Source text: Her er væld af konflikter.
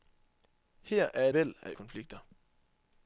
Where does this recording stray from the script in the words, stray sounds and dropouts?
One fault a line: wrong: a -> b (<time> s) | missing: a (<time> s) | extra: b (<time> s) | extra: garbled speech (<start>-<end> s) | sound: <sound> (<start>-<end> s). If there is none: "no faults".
no faults